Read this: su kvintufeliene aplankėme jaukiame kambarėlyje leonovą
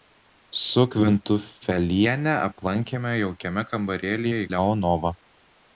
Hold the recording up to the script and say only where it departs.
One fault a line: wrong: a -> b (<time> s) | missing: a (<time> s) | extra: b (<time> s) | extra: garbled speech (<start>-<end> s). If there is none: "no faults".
no faults